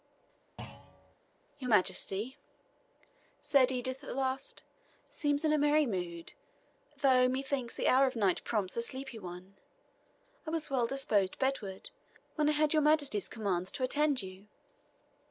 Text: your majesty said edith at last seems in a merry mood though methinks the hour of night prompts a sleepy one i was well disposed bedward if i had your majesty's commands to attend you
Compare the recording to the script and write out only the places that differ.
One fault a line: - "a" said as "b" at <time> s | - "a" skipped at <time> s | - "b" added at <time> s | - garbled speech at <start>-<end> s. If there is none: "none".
- "if" said as "when" at 12.4 s